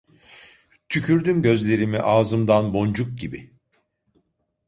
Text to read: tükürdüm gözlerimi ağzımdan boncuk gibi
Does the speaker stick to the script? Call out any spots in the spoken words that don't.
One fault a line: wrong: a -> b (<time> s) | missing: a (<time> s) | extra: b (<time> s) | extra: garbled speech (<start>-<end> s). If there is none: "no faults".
no faults